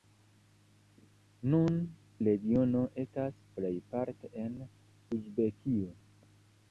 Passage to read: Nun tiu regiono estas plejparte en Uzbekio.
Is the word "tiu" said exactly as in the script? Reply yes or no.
no